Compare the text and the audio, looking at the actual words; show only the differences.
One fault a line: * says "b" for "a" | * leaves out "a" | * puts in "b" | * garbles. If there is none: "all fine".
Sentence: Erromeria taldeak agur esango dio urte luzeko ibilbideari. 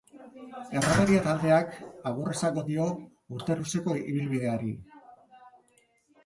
all fine